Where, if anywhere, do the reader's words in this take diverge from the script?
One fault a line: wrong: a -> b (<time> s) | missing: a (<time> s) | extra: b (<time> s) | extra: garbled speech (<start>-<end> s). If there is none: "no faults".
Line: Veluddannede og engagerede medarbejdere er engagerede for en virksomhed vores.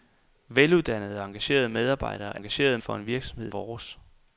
no faults